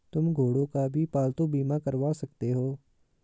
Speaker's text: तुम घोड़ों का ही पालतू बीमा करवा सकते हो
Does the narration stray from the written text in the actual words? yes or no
yes